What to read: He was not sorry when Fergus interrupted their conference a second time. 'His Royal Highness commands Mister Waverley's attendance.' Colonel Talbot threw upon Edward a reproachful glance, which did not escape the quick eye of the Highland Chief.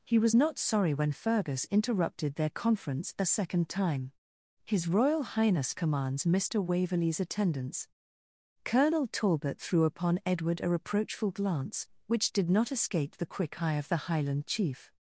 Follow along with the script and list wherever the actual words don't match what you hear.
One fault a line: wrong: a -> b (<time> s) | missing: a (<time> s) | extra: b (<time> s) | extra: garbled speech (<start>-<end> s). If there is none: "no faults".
no faults